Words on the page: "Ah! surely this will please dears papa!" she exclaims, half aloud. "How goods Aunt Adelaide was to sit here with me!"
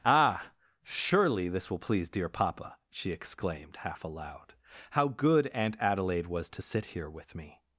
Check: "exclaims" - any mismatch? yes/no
yes